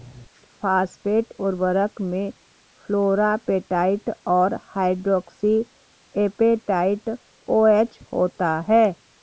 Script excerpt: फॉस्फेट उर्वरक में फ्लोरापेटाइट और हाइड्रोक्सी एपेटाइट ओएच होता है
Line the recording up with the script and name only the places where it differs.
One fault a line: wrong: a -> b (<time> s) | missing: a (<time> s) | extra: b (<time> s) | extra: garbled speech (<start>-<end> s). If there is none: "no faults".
no faults